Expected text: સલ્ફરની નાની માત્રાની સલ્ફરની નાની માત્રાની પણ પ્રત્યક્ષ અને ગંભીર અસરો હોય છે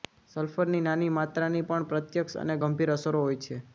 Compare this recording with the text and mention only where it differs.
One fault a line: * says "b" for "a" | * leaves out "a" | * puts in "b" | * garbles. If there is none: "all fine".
* leaves out "સલ્ફરની નાની માત્રાની"